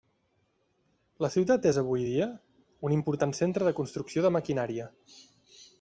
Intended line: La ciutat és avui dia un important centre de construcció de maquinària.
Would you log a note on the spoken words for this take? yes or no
no